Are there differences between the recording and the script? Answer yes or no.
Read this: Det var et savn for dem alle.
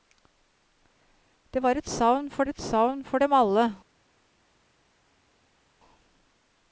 yes